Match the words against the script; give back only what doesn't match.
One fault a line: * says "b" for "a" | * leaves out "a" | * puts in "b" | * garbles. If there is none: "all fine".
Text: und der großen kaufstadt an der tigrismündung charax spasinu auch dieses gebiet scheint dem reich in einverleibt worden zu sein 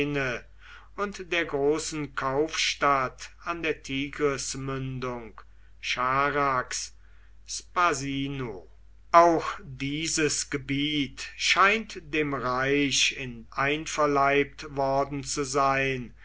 all fine